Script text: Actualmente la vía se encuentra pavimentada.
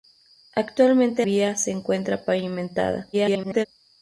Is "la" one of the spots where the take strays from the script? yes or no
yes